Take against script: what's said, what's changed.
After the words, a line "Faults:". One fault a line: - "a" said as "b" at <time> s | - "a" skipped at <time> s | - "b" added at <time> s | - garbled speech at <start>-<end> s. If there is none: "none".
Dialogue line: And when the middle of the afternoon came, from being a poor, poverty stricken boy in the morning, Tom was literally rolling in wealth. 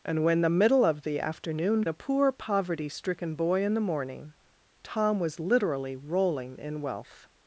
And when the middle of the afternoon a poor, poverty stricken boy in the morning, Tom was literally rolling in wealth.
Faults:
- "came from being" skipped at 1.9 s